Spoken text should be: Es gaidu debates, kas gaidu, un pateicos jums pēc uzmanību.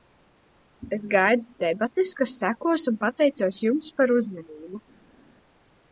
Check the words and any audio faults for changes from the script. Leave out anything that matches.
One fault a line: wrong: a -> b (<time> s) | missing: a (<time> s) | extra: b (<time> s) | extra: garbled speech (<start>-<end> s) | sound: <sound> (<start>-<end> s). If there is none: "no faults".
wrong: gaidu -> sekos (2.4 s)
wrong: pēc -> par (4.0 s)